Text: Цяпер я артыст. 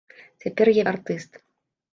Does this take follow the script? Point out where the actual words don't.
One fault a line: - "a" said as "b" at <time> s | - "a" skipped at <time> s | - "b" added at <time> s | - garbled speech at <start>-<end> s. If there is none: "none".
none